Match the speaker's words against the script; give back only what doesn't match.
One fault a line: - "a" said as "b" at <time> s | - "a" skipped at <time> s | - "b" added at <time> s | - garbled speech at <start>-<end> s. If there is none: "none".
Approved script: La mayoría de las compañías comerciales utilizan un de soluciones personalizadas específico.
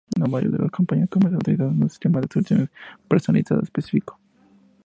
- "sistema" added at 1.9 s